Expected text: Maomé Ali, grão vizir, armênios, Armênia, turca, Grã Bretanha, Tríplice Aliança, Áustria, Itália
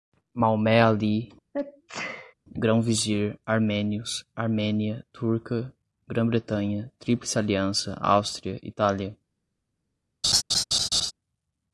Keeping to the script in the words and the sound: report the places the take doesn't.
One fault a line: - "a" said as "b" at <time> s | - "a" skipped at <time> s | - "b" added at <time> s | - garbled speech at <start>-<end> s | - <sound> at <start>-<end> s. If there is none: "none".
- sneeze at 1.5-2.3 s
- laugh at 10.2-11.1 s